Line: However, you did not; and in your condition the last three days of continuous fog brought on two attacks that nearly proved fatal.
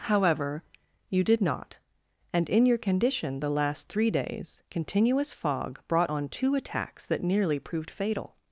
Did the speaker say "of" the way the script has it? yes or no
no